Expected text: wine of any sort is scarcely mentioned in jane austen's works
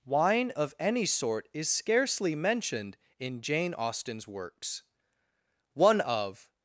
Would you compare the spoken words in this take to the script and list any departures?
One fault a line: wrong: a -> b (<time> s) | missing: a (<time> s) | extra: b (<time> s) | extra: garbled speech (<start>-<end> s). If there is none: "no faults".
extra: one of (5.7 s)